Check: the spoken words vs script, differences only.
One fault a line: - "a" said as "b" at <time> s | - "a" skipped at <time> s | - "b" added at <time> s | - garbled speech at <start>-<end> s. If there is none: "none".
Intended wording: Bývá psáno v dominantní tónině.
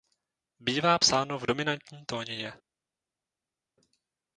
none